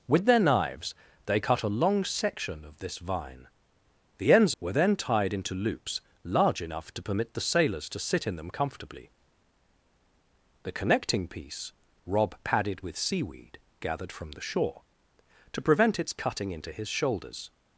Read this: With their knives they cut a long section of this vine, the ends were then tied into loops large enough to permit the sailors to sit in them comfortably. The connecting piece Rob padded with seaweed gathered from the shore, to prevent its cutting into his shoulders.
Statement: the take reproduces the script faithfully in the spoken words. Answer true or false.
true